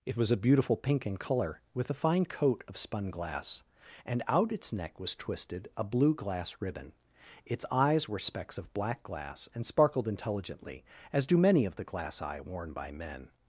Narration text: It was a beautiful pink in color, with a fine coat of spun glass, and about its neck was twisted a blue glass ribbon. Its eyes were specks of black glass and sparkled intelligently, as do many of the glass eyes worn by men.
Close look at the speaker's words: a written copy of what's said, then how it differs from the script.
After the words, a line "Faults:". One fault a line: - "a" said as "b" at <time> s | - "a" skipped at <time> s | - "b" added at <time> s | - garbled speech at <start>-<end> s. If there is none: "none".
It was a beautiful pink in color, with a fine coat of spun glass, and out its neck was twisted a blue glass ribbon. Its eyes were specks of black glass and sparkled intelligently, as do many of the glass eye worn by men.
Faults:
- "about" said as "out" at 4.3 s
- "eyes" said as "eye" at 12.2 s